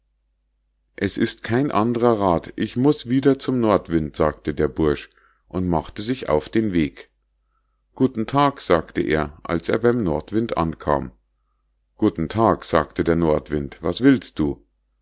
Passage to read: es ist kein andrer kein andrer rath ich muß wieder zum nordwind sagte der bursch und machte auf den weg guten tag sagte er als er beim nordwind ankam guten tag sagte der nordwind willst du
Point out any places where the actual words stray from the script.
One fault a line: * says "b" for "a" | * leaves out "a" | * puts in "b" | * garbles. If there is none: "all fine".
* leaves out "kein andrer"
* puts in "sich"
* puts in "was"